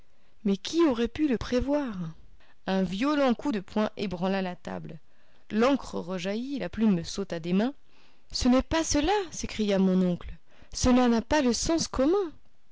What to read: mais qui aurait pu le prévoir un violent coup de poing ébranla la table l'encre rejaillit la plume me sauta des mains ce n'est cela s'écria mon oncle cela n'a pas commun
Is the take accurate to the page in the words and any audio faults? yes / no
no